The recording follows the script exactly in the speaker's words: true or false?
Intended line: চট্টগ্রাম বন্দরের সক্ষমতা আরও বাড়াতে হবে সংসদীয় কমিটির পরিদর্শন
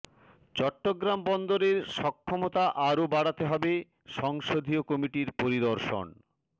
true